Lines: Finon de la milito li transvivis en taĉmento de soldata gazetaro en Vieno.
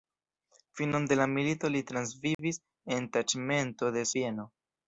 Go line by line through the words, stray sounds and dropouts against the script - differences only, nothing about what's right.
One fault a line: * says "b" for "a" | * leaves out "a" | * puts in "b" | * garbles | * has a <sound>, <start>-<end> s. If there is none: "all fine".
* has a dropout, 2.3-2.4 s
* leaves out "soldata gazetaro en"